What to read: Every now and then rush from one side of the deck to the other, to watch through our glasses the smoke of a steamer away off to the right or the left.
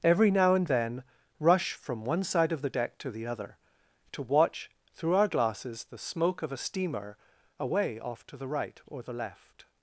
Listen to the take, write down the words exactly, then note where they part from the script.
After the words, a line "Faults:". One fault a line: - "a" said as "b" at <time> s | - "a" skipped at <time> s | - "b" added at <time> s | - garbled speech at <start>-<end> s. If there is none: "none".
Every now and then rush from one side of the deck to the other, to watch through our glasses the smoke of a steamer away off to the right or the left.
Faults:
none